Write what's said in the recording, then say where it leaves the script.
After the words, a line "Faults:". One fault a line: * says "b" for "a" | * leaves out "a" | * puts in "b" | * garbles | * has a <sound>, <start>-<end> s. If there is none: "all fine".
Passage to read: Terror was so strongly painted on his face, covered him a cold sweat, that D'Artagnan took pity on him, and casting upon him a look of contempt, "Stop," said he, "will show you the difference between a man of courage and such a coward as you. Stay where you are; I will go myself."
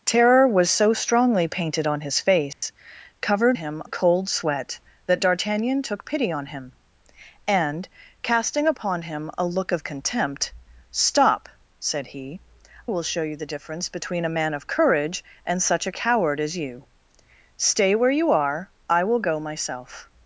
Terror was so strongly painted on his face, covered him a cold sweat, that D'Artagnan took pity on him, and casting upon him a look of contempt, "Stop," said he, "will show you the difference between a man of courage and such a coward as you. Stay where you are; I will go myself."
Faults:
* has a dropout, 2.5-2.6 s